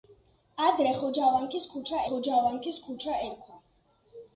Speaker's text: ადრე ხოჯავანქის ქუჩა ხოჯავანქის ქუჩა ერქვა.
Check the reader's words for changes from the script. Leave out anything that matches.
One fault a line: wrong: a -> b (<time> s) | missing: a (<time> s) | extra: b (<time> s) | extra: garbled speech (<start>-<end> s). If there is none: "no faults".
no faults